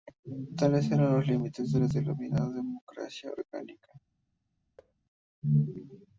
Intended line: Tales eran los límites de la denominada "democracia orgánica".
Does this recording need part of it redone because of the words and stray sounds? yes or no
yes